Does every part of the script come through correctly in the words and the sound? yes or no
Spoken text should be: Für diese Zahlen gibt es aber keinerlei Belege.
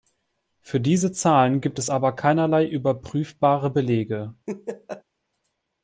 no